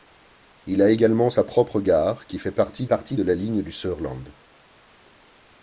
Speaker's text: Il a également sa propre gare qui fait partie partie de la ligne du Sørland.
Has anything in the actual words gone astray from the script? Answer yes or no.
no